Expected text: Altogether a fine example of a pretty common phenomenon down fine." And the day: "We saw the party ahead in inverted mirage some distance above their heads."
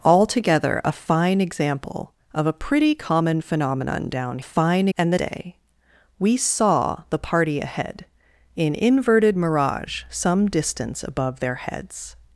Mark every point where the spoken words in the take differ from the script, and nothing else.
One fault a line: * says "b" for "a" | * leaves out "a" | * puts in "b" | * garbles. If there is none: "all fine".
all fine